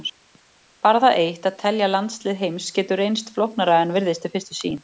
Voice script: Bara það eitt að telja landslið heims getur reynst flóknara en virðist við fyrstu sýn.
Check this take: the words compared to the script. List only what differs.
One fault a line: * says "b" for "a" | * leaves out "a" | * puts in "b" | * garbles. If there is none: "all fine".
all fine